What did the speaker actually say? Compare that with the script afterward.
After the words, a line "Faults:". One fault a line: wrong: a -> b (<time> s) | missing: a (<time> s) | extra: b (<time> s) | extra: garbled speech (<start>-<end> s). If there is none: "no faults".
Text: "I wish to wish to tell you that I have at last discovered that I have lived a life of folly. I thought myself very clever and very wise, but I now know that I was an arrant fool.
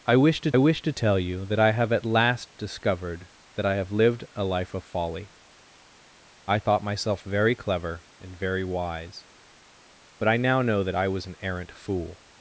"I wish to wish to tell you that I have at last discovered that I have lived a life of folly. I thought myself very clever and very wise, but I now know that I was an arrant fool.
Faults:
no faults